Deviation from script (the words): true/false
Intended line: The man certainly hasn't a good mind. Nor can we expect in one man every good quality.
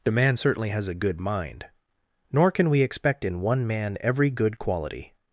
true